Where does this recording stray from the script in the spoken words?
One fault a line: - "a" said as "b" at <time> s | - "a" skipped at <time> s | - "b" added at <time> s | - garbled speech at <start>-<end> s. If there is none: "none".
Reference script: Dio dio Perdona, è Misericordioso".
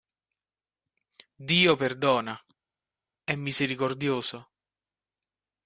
- "dio" skipped at 1.8 s